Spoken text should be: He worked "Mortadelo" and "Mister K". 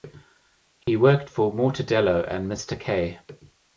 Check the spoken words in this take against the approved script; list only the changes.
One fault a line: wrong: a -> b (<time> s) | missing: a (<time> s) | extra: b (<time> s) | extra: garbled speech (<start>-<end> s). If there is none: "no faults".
extra: for (1.3 s)